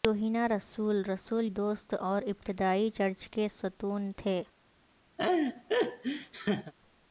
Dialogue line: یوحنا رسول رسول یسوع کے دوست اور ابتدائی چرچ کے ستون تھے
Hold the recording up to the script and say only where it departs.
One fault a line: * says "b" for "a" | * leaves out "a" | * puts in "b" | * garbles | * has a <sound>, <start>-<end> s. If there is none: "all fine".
* leaves out "یسوع کے"
* has a laugh, 5.2-6.7 s